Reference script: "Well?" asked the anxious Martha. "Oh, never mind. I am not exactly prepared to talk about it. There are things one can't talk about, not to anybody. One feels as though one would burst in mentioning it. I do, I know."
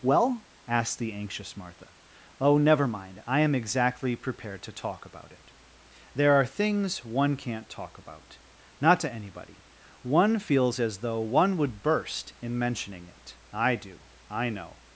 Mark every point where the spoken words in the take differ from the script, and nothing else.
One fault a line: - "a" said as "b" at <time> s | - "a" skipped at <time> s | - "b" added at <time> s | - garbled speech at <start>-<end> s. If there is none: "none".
- "not" skipped at 3.5 s